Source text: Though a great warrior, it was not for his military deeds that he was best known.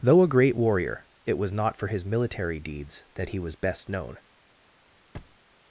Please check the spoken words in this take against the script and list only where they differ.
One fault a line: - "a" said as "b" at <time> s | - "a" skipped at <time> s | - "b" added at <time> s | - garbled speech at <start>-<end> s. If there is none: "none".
none